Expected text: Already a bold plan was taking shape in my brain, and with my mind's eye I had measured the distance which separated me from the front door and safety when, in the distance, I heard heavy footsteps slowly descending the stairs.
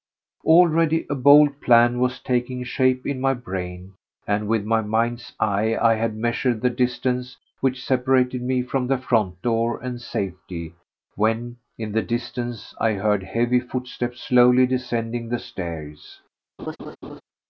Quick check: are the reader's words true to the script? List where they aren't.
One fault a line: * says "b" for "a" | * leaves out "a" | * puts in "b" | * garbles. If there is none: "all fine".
all fine